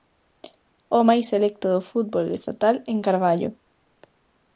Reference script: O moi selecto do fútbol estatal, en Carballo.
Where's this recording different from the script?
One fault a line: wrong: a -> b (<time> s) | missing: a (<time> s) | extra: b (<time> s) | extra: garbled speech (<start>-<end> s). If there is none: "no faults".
wrong: moi -> máis (1.1 s)